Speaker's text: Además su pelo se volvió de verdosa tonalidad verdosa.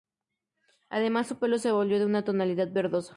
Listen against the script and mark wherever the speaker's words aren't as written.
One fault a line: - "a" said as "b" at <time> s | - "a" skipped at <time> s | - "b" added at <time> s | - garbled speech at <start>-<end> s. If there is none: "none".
- "verdosa" said as "una" at 2.0 s